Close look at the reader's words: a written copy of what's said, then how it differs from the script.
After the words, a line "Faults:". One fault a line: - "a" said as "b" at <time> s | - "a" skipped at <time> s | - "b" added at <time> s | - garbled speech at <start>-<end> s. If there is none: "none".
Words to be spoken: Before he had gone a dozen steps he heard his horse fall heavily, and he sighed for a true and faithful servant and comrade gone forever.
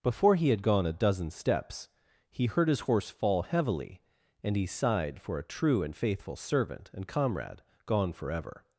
Before he had gone a dozen steps he heard his horse fall heavily, and he sighed for a true and faithful servant and comrade gone forever.
Faults:
none